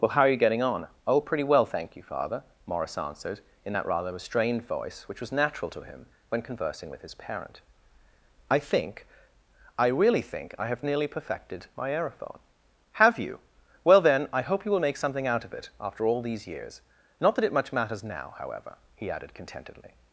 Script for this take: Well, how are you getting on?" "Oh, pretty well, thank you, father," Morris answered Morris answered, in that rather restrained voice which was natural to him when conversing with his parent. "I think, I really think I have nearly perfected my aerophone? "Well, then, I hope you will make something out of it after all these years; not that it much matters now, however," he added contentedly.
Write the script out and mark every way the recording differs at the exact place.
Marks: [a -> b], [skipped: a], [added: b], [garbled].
Well, how are you getting on?" "Oh, pretty well, thank you, father," Morris answered [skipped: Morris answered,] in that rather restrained voice which was natural to him when conversing with his parent. "I think, I really think I have nearly perfected my aerophone? [added: Have you] "Well, then, I hope you will make something out of it after all these years; not that it much matters now, however," he added contentedly.